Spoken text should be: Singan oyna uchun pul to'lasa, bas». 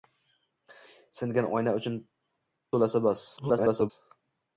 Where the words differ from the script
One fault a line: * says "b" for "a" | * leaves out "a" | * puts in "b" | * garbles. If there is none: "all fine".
* leaves out "pul"
* garbles